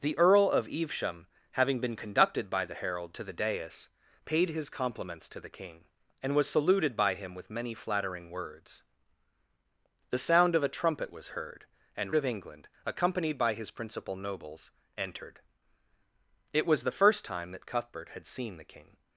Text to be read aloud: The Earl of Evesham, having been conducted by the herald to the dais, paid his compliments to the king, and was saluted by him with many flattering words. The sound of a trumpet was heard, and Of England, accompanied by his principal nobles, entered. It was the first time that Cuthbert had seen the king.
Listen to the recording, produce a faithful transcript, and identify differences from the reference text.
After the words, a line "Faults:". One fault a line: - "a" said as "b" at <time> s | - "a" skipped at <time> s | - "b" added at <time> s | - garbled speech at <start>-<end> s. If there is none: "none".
The Earl of Evesham, having been conducted by the herald to the dais, paid his compliments to the king, and was saluted by him with many flattering words. The sound of a trumpet was heard, and Of England, accompanied by his principal nobles, entered. It was the first time that Cuthbert had seen the king.
Faults:
none